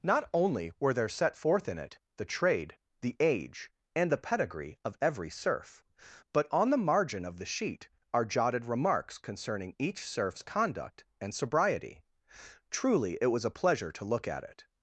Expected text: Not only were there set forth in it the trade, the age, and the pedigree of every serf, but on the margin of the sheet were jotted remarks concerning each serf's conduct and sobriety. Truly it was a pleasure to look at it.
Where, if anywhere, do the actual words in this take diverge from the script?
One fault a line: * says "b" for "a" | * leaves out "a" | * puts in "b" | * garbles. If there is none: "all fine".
* says "are" for "were"